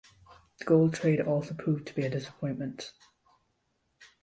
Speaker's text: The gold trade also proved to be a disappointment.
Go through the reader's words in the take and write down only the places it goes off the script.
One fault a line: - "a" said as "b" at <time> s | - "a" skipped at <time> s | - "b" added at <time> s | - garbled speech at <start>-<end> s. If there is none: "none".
none